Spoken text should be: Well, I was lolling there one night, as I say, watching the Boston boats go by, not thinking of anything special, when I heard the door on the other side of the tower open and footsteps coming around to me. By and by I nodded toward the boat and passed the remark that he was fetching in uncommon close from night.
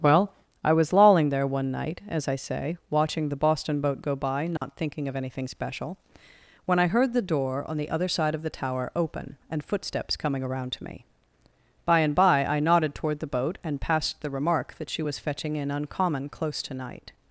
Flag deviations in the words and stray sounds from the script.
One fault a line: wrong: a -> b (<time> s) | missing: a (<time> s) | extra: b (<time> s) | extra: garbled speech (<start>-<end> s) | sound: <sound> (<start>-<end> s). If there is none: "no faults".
wrong: boats -> boat (3.8 s)
sound: dropout (4.6-4.6 s)
wrong: he -> she (14.9 s)
wrong: from -> to (16.6 s)